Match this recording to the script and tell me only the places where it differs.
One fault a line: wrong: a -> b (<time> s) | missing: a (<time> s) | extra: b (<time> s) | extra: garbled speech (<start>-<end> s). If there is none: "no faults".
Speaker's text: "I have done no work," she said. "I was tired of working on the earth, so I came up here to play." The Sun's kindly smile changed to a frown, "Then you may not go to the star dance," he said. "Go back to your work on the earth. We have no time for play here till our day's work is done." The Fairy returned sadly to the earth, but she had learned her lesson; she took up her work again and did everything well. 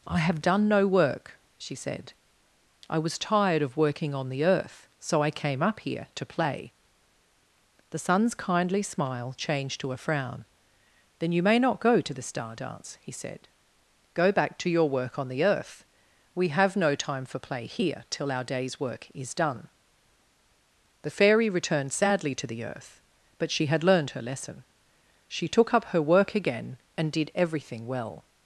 no faults